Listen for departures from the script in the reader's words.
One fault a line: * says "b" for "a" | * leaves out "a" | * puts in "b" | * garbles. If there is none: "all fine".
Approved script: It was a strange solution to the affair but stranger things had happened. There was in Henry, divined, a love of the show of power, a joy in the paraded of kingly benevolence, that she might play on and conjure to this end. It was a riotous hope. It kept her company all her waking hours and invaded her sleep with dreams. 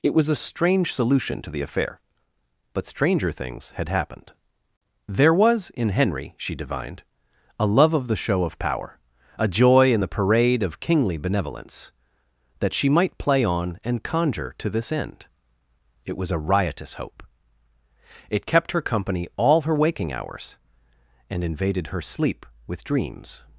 * puts in "she"
* says "parade" for "paraded"